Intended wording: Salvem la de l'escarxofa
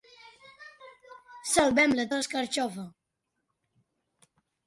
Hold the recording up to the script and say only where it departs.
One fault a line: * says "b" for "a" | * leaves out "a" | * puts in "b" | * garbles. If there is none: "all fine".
all fine